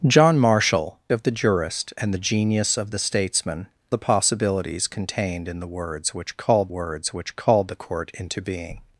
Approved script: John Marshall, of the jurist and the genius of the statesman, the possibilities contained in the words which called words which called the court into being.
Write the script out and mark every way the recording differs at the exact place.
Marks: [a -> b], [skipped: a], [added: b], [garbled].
John Marshall, of the jurist and the genius of the statesman, the possibilities contained in the words which called words which called the court into being.